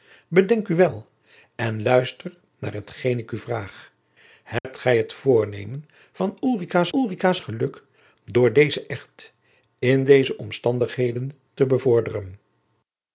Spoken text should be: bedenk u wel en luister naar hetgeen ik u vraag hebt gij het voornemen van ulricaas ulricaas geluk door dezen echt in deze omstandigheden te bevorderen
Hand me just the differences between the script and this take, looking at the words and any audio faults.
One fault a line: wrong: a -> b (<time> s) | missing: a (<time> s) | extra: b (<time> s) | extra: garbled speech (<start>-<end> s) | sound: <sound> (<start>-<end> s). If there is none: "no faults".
sound: dropout (4.6-4.6 s)